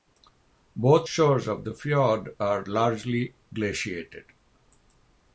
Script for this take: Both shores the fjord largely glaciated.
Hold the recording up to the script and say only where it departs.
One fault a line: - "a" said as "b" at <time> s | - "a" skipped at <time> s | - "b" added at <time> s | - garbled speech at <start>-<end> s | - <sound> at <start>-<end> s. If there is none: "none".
- "of" added at 1.5 s
- "are" added at 2.4 s